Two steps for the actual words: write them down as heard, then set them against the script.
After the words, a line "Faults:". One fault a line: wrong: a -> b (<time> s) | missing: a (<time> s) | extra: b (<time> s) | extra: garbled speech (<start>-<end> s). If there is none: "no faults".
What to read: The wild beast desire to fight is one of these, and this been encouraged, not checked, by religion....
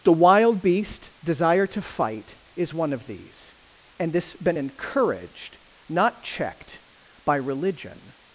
The wild beast desire to fight is one of these, and this been encouraged, not checked, by religion....
Faults:
no faults